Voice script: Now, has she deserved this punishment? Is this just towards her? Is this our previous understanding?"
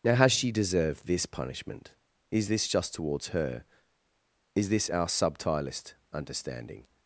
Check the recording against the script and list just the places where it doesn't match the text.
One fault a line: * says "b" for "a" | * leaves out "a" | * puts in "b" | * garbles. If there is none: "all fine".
* says "subtilist" for "previous"